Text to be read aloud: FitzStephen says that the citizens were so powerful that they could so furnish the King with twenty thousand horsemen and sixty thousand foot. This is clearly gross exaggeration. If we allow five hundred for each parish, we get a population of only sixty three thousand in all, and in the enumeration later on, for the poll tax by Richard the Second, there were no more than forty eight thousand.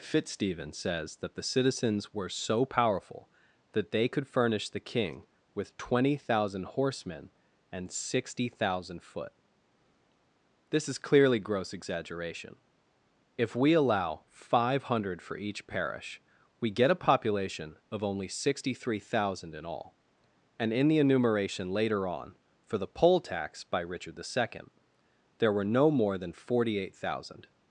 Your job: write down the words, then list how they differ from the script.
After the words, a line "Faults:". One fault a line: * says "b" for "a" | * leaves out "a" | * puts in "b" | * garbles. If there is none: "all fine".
FitzStephen says that the citizens were so powerful that they could furnish the King with twenty thousand horsemen and sixty thousand foot. This is clearly gross exaggeration. If we allow five hundred for each parish, we get a population of only sixty three thousand in all, and in the enumeration later on, for the poll tax by Richard the Second, there were no more than forty eight thousand.
Faults:
* leaves out "so"